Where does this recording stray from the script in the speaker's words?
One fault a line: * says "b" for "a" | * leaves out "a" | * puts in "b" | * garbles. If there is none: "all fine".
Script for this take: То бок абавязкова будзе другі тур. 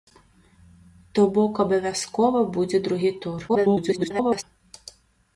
* garbles